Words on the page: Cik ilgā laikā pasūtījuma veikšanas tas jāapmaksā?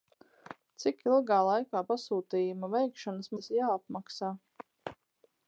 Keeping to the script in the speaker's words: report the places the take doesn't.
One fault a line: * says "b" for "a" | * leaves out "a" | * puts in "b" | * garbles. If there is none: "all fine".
all fine